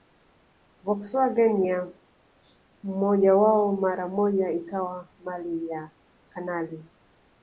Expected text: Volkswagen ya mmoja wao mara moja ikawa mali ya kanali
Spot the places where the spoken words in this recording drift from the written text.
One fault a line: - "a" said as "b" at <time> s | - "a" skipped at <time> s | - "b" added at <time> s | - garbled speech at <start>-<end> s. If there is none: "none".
none